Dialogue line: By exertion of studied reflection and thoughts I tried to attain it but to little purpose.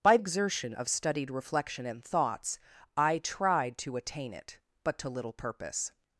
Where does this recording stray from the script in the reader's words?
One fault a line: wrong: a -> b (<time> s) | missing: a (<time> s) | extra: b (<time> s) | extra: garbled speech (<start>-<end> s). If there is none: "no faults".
no faults